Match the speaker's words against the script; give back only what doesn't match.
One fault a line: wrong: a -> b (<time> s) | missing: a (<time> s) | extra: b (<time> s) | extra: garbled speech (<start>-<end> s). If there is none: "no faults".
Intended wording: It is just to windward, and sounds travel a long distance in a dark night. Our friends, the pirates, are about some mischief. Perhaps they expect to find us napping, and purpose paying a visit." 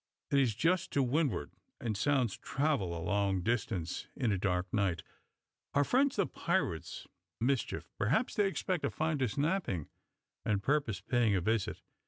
missing: are about some (7.0 s)